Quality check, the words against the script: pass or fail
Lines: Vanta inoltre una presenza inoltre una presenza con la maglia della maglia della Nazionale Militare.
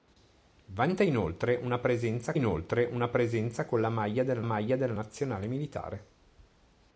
pass